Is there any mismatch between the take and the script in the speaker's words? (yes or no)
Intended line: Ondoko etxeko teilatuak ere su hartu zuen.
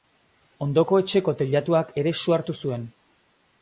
no